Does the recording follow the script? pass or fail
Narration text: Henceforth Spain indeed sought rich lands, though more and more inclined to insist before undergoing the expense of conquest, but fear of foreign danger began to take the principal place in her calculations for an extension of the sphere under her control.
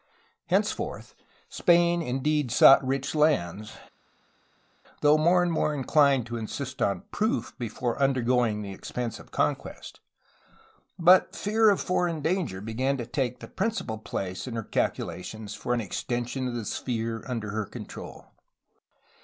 fail